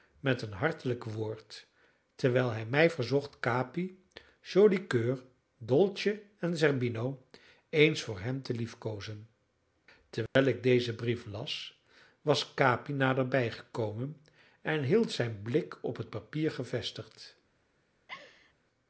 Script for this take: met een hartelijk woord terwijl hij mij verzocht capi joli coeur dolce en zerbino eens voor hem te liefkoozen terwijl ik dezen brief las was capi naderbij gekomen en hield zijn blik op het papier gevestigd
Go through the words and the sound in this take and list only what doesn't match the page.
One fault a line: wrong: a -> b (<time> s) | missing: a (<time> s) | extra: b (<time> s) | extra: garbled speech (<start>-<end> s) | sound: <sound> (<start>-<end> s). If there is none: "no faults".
sound: dropout (10.3-10.4 s)
sound: laugh (18.1-18.5 s)